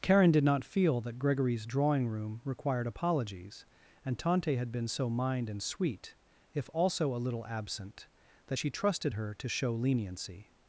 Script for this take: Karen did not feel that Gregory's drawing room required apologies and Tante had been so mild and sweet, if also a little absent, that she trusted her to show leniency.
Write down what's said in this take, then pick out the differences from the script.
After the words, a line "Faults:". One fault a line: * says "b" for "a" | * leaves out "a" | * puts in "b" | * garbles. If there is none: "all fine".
Karen did not feel that Gregory's drawing room required apologies and Tante had been so mind and sweet, if also a little absent, that she trusted her to show leniency.
Faults:
* says "mind" for "mild"